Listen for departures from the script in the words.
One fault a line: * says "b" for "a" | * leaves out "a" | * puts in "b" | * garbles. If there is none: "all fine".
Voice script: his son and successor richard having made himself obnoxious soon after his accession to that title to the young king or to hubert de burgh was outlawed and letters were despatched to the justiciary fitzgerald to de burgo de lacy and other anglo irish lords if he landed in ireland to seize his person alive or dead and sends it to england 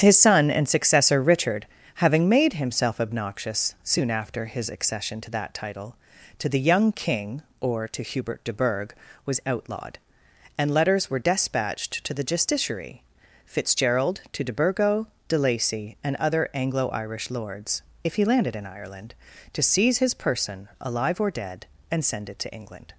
* says "send" for "sends"